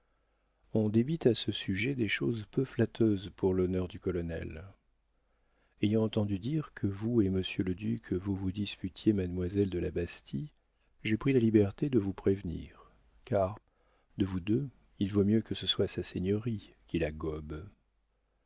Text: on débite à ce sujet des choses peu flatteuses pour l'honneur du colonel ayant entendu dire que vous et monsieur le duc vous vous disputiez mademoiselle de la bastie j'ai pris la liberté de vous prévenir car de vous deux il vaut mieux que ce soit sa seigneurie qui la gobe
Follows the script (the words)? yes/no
yes